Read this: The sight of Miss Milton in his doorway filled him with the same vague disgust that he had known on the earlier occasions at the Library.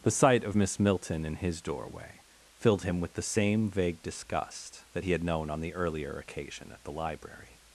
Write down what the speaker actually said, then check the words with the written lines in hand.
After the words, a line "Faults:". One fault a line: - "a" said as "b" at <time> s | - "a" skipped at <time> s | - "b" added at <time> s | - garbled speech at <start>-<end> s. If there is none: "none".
The sight of Miss Milton in his doorway filled him with the same vague disgust that he had known on the earlier occasion at the Library.
Faults:
- "occasions" said as "occasion" at 6.2 s